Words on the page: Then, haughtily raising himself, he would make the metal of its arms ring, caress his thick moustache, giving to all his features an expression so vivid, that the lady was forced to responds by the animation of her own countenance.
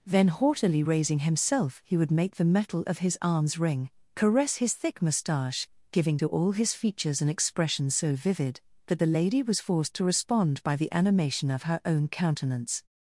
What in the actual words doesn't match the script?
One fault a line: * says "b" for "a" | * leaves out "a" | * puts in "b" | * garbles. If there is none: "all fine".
* says "his" for "its"
* says "respond" for "responds"